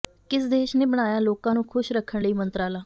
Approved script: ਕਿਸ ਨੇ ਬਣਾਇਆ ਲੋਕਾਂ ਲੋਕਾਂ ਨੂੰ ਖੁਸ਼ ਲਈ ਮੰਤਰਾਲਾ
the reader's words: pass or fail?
fail